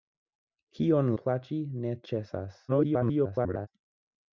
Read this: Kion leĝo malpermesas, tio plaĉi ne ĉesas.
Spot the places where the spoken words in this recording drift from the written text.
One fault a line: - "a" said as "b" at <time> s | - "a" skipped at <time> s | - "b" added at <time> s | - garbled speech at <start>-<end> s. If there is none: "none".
- "leĝo malpermesas tio" skipped at 1.1 s
- garbled speech at 2.7-3.7 s